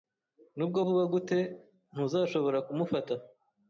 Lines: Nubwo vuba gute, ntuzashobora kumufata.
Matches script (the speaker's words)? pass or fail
pass